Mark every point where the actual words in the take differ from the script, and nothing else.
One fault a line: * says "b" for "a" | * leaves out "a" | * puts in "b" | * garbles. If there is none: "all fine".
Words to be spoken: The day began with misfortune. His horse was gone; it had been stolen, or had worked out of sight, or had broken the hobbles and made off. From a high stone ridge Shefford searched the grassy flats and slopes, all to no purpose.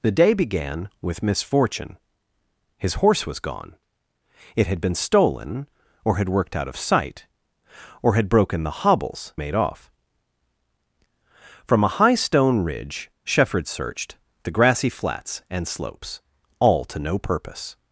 * leaves out "and"